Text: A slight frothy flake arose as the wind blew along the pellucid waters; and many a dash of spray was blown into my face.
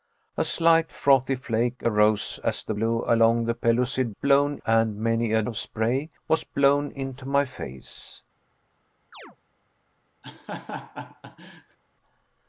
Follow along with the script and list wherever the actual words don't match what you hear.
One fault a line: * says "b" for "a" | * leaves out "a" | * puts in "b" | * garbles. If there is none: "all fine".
* leaves out "wind"
* says "blown" for "waters"
* leaves out "dash"